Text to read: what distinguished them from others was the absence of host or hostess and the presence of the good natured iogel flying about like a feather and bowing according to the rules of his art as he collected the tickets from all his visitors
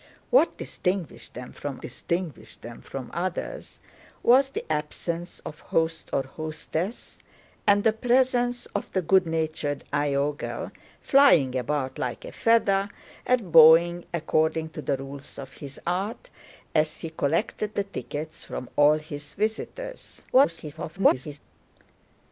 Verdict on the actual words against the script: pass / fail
fail